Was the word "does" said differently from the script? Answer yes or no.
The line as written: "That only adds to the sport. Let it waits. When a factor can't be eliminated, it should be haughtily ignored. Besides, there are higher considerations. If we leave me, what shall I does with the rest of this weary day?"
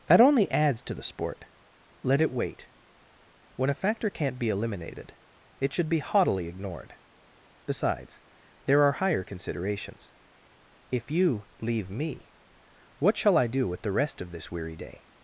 yes